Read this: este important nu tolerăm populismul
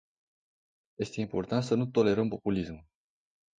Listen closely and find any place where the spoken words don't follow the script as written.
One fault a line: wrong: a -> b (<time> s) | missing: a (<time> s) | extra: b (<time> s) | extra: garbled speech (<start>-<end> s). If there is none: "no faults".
extra: să (1.6 s)